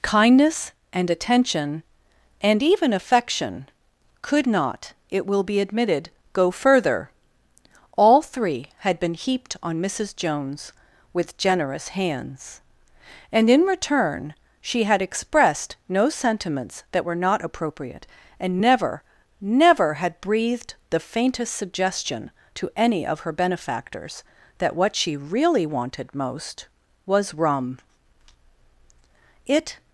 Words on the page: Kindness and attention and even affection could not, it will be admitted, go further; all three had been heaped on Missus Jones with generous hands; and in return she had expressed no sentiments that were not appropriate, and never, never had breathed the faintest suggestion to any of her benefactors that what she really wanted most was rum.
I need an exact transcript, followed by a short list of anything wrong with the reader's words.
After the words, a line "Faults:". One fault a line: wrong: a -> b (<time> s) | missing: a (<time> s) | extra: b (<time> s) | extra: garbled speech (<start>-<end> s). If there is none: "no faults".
Kindness and attention and even affection could not, it will be admitted, go further; all three had been heaped on Missus Jones with generous hands; and in return she had expressed no sentiments that were not appropriate, and never, never had breathed the faintest suggestion to any of her benefactors that what she really wanted most was rum. It
Faults:
extra: It (29.5 s)